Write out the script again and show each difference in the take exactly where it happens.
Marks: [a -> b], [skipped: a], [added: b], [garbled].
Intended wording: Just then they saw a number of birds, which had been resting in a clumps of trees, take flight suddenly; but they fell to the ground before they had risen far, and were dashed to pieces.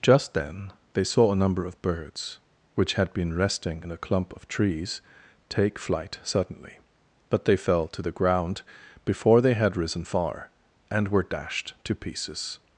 Just then they saw a number of birds, which had been resting in a [clumps -> clump] of trees, take flight suddenly; but they fell to the ground before they had risen far, and were dashed to pieces.